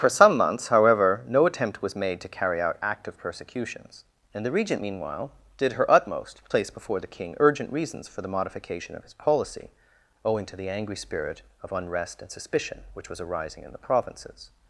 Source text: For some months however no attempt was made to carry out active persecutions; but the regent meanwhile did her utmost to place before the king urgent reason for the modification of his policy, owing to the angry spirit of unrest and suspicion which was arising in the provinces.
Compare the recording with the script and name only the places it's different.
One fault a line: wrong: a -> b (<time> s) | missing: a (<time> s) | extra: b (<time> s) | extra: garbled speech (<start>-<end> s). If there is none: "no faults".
wrong: but -> and (4.3 s)
wrong: reason -> reasons (7.7 s)